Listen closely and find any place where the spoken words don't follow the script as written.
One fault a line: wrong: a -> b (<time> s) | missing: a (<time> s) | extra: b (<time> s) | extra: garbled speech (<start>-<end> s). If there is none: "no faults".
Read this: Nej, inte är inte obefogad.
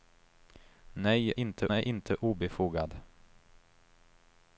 no faults